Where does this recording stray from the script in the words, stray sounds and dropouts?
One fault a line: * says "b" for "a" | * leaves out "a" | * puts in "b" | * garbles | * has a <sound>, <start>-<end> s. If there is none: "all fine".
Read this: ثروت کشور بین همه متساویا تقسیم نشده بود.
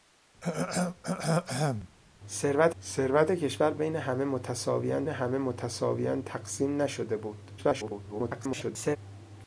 * has a throat clearing, 0.4-1.9 s
* puts in "ثروت"
* puts in "همه متساویا"
* garbles